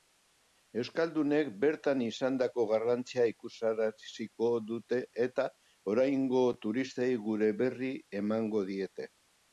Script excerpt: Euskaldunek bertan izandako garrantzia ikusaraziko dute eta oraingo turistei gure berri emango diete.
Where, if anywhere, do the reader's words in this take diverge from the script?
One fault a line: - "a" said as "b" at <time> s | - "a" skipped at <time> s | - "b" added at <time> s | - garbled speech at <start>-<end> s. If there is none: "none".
none